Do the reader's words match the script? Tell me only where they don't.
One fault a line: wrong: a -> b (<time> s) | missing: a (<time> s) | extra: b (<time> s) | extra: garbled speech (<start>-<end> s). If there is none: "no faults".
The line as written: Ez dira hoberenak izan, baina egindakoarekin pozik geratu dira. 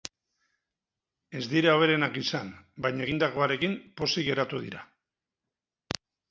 no faults